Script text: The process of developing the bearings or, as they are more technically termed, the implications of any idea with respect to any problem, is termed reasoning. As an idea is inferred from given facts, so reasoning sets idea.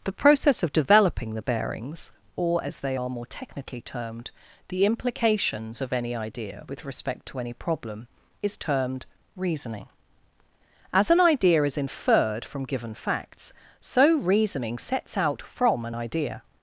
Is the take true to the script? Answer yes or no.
no